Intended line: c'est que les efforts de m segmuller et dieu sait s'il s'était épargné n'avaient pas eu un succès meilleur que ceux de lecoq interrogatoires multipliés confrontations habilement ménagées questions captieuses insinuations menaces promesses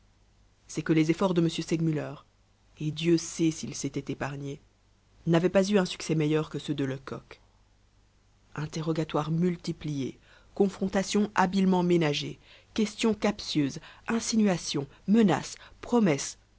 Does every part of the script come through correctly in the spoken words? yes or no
yes